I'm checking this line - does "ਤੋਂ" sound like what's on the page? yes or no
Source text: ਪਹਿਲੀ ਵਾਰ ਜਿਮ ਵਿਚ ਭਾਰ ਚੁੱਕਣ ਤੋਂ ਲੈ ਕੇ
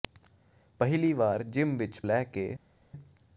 no